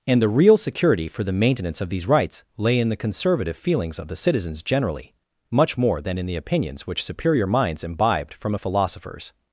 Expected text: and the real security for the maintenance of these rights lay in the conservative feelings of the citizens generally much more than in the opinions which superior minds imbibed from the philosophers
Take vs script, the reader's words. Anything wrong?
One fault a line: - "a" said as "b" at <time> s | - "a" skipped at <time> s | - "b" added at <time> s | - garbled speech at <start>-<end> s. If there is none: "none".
- "the" said as "a" at 8.5 s